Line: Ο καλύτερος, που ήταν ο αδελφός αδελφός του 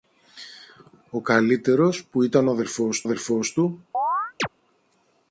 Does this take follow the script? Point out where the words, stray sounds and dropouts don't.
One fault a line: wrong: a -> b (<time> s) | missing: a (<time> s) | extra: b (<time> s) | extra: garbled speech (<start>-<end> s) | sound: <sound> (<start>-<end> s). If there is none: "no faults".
sound: chirp (3.9-4.5 s)